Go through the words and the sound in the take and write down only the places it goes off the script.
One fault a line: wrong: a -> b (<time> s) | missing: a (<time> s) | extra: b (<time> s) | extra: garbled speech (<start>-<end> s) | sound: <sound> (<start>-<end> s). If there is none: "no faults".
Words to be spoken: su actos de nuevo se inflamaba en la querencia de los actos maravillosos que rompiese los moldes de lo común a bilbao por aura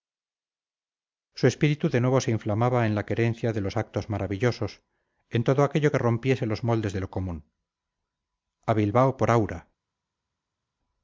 wrong: actos -> espíritu (1.5 s)
extra: en todo aquello (5.3 s)